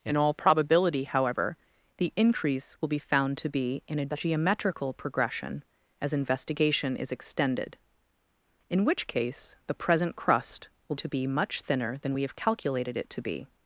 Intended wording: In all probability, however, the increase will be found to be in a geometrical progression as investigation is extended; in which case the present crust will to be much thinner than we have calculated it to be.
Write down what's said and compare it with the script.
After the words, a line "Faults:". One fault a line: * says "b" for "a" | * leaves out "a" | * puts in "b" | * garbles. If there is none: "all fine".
In all probability, however, the increase will be found to be in a geometrical progression as investigation is extended; in which case the present crust will to be much thinner than we have calculated it to be.
Faults:
all fine